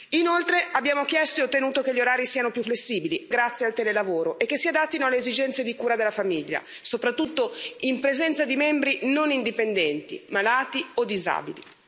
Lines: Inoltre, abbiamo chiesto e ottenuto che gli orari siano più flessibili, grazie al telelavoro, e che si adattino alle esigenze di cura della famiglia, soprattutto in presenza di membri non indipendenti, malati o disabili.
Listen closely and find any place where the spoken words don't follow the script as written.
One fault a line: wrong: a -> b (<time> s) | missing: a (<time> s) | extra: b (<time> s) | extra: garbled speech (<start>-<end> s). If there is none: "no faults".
no faults